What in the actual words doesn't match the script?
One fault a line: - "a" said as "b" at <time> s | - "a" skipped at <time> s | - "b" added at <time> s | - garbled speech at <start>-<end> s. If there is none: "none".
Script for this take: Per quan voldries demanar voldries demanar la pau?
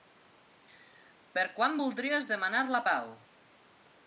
- "voldries demanar" skipped at 2.6 s